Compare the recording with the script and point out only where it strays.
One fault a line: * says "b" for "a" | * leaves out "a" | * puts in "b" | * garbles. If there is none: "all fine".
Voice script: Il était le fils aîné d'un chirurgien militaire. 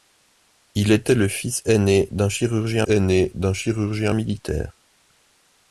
* puts in "aîné d'un chirurgien"